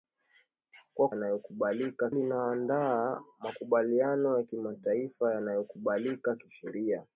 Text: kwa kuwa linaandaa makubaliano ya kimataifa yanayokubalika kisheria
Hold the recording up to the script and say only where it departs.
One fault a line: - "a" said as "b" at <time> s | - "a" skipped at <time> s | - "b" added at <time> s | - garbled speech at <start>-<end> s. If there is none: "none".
- "kuwa" said as "yanayokubalika" at 1.1 s